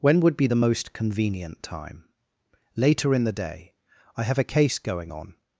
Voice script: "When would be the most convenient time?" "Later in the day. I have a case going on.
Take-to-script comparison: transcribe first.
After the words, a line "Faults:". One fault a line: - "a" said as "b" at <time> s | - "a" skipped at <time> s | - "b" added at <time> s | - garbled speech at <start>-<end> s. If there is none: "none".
"When would be the most convenient time?" "Later in the day. I have a case going on.
Faults:
none